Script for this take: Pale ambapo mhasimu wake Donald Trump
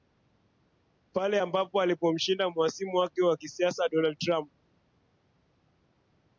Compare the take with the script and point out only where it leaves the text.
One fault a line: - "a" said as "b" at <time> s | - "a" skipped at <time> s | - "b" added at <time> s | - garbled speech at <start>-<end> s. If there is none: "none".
- "alipomshinda" added at 1.8 s
- "wa kisiasa" added at 3.2 s